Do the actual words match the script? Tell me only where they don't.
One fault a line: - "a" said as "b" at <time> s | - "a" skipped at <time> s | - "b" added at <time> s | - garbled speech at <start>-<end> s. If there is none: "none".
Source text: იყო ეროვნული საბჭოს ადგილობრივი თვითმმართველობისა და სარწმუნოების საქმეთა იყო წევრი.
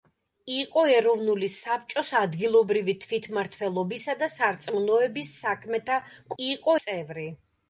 none